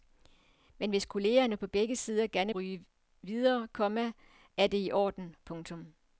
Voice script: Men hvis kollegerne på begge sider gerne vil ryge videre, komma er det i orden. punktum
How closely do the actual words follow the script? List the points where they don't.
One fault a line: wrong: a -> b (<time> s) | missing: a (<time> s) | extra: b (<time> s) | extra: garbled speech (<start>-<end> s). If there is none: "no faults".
missing: vil (2.5 s)